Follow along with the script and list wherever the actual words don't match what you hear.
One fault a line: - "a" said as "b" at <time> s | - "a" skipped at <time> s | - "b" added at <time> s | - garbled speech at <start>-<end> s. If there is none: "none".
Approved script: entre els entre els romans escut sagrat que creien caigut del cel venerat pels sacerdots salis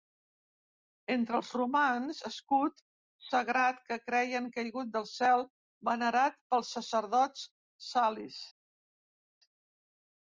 - "entre els" skipped at 1.5 s